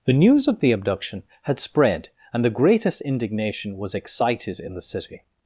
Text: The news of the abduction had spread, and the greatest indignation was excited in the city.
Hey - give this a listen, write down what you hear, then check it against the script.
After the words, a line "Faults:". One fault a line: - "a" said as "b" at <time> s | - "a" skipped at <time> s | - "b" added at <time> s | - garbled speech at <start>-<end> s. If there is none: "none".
The news of the abduction had spread, and the greatest indignation was excited in the city.
Faults:
none